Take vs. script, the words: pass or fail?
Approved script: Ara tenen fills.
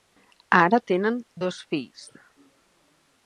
fail